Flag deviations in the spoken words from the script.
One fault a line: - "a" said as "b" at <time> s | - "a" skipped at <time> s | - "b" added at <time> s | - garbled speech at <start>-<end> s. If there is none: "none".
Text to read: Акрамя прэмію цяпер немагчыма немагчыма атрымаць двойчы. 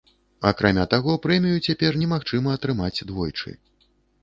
- "таго" added at 0.9 s
- "немагчыма" skipped at 2.5 s